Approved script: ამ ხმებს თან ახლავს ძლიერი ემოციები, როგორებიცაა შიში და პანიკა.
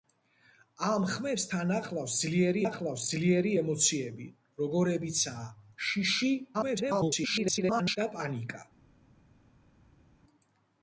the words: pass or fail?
fail